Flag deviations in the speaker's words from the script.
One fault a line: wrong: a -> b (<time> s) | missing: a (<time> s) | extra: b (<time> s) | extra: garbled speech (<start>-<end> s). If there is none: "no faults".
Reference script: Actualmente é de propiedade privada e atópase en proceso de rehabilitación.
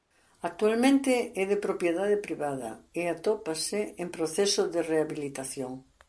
no faults